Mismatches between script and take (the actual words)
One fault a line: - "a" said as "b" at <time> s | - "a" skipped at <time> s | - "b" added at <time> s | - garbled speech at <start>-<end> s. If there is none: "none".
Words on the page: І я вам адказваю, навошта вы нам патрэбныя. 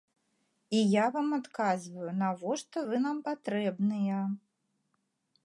none